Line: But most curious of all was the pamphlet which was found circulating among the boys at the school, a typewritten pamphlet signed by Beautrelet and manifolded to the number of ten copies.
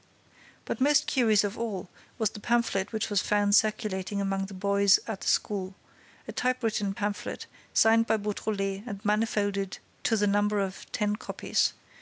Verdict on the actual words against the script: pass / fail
pass